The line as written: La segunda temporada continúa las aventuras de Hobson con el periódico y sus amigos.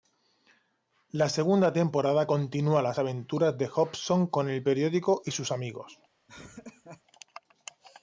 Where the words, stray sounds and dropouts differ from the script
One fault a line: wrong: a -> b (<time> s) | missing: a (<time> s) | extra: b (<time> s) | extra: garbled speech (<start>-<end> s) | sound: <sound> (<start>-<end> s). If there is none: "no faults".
sound: laugh (6.3-7.0 s)